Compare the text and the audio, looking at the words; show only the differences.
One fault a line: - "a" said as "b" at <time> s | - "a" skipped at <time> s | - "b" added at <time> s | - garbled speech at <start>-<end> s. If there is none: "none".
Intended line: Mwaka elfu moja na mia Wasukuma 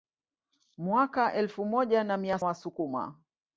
none